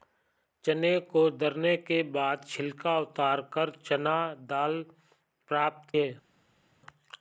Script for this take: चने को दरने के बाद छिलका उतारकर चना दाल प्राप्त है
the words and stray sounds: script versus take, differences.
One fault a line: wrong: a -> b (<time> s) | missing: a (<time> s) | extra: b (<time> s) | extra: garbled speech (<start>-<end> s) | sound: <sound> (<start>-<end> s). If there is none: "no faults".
no faults